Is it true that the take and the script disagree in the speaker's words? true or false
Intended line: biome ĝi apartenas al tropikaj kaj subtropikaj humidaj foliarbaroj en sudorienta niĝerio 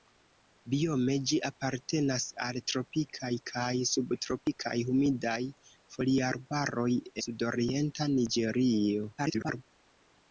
true